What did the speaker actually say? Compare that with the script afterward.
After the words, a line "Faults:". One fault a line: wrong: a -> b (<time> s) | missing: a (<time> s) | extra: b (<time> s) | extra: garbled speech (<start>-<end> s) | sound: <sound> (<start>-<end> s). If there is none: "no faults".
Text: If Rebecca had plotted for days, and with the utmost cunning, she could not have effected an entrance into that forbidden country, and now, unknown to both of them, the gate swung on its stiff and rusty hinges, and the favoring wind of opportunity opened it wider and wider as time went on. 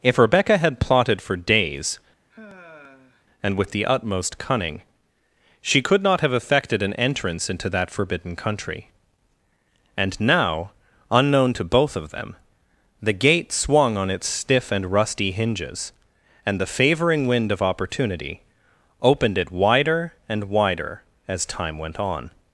If Rebecca had plotted for days, and with the utmost cunning, she could not have effected an entrance into that forbidden country, and now, unknown to both of them, the gate swung on its stiff and rusty hinges, and the favoring wind of opportunity opened it wider and wider as time went on.
Faults:
sound: sigh (2.3-3.3 s)